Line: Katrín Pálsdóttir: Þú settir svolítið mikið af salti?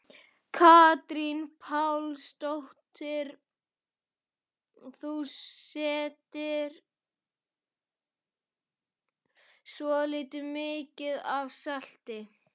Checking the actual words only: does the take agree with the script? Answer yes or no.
yes